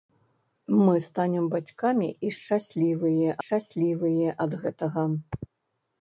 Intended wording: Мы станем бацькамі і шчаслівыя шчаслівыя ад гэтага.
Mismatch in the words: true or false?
false